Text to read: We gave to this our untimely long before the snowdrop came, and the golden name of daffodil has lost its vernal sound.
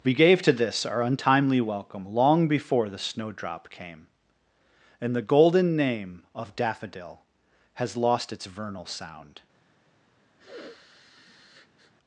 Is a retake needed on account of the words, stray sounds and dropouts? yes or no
yes